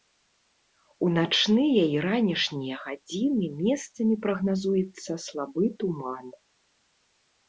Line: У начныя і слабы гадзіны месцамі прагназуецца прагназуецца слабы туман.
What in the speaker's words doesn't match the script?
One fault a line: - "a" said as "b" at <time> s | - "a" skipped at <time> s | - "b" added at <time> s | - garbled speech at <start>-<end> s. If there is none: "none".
- "слабы" said as "ранішнія" at 2.0 s
- "прагназуецца" skipped at 5.1 s